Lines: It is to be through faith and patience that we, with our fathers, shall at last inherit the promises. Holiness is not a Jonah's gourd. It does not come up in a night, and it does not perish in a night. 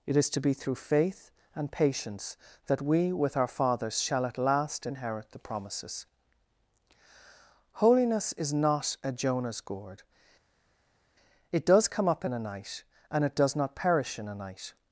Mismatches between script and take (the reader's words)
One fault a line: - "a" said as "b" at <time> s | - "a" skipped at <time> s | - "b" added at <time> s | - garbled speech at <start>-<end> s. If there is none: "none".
- "not" skipped at 11.9 s